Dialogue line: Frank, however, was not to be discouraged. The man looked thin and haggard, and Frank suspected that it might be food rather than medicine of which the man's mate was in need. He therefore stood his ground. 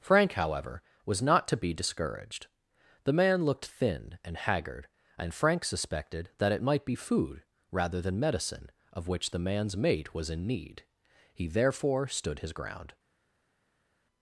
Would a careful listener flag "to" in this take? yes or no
no